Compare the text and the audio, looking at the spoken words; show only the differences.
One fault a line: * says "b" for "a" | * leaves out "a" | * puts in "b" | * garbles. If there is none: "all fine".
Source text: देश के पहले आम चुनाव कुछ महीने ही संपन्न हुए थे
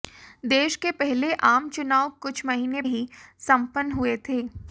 all fine